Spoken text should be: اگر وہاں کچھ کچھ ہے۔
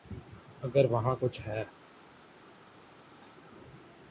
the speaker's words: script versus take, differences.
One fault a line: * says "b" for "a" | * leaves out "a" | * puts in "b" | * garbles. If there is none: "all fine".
* leaves out "کچھ"